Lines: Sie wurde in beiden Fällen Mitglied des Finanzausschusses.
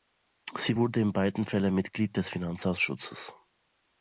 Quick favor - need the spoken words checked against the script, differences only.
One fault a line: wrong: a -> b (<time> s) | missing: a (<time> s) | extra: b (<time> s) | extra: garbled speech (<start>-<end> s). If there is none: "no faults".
no faults